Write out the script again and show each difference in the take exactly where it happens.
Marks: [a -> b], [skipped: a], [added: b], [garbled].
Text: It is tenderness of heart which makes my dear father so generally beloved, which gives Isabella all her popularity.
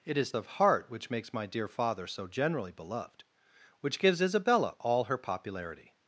It is [skipped: tenderness] of heart which makes my dear father so generally beloved, which gives Isabella all her popularity.